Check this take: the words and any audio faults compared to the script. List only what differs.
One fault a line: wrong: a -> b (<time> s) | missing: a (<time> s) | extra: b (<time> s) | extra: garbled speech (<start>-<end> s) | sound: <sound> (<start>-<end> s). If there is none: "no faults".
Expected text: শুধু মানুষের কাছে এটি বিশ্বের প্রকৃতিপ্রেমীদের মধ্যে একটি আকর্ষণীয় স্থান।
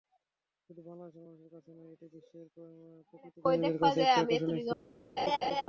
extra: বাংলাদেশের (0.9 s)
extra: নয় (1.8 s)
wrong: মধ্যে -> কাছে (3.8 s)
sound: laugh (5.2-5.6 s)